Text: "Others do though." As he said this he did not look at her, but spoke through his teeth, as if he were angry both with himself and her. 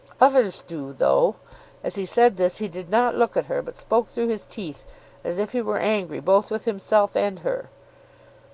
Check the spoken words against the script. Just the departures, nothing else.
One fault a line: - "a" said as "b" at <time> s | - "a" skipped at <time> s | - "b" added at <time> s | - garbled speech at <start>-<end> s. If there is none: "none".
none